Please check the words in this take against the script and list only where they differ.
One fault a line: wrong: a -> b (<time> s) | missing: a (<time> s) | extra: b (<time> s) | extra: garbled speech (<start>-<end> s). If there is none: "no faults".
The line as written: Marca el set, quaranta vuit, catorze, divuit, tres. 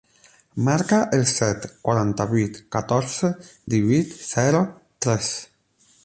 extra: zero (4.3 s)